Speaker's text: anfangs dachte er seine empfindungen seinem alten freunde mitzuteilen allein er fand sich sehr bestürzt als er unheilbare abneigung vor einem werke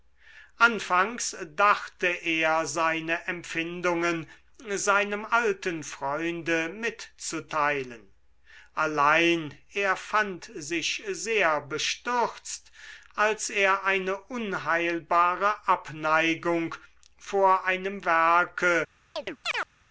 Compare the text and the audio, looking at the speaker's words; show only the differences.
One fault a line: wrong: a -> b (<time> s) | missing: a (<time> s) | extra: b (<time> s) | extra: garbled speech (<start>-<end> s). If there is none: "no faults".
extra: eine (13.8 s)